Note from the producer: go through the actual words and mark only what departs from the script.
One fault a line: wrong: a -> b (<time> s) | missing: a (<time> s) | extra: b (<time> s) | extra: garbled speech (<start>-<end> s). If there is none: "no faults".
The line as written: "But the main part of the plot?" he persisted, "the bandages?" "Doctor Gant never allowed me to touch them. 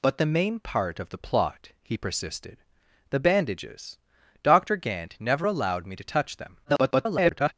extra: garbled speech (6.6-7.5 s)